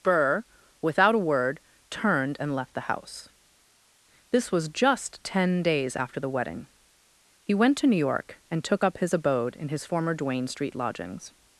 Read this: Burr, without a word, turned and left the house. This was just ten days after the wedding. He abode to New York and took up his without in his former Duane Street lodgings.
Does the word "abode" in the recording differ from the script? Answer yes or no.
yes